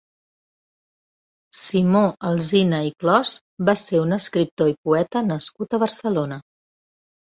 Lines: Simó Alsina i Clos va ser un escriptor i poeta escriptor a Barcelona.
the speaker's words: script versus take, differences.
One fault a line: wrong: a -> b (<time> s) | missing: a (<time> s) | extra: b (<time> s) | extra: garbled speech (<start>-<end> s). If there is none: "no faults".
wrong: escriptor -> nascut (5.3 s)